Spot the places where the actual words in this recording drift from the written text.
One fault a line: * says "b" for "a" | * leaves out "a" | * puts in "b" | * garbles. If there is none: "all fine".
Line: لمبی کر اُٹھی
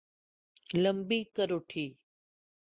all fine